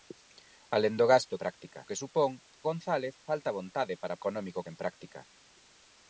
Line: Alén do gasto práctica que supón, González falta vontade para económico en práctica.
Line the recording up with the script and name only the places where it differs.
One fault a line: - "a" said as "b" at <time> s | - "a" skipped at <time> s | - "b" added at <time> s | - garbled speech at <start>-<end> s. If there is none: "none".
none